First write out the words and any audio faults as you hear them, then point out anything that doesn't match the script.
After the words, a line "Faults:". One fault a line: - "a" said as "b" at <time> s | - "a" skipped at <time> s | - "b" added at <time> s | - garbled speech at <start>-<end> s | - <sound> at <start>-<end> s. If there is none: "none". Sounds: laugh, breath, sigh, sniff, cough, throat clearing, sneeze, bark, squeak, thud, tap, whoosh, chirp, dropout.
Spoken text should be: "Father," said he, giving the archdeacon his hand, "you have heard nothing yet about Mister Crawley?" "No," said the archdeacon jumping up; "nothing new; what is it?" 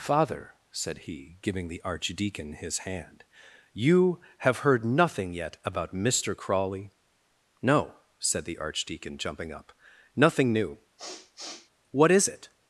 "Father," said he, giving the archdeacon his hand, "you have heard nothing yet about Mister Crawley?" "No," said the archdeacon jumping up; "nothing new; what is it?"
Faults:
- sniff at 11.0-11.7 s